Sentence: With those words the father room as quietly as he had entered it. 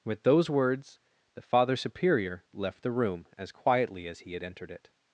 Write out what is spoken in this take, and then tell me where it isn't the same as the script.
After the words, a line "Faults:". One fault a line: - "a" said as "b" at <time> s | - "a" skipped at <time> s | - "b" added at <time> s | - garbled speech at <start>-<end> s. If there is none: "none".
With those words the father superior left the room as quietly as he had entered it.
Faults:
- "superior left the" added at 1.8 s